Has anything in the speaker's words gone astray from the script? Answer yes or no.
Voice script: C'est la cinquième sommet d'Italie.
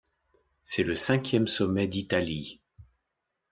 yes